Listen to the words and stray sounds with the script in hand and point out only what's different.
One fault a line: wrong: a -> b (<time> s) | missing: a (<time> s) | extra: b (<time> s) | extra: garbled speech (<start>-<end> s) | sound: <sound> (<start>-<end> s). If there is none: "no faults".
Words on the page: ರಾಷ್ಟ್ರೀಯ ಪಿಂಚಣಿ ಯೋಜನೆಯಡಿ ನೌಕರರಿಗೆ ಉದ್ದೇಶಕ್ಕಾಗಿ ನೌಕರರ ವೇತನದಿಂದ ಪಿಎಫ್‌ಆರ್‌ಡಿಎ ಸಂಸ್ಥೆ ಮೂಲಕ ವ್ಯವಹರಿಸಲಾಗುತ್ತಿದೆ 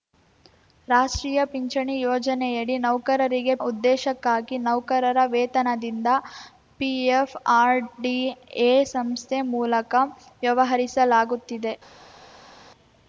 no faults